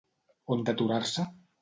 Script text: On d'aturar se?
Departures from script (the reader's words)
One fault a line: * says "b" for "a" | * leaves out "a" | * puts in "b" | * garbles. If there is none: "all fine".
all fine